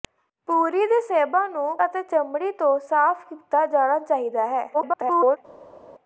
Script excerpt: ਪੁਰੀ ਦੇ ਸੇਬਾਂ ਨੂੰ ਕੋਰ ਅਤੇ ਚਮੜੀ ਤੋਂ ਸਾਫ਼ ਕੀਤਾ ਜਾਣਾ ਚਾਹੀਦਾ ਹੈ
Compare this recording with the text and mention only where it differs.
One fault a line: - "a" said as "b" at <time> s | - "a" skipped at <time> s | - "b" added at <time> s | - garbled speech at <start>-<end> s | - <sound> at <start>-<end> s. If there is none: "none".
- "ਕੋਰ" skipped at 1.8 s
- garbled speech at 4.7-5.4 s